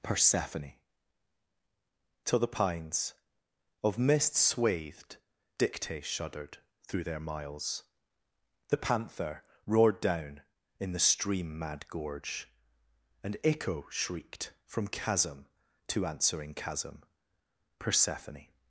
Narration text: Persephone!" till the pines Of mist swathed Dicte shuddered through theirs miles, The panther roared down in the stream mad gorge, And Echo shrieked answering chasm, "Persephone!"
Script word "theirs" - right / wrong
wrong